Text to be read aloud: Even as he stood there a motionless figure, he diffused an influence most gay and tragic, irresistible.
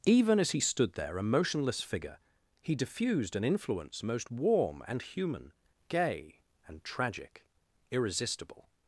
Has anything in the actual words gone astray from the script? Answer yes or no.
yes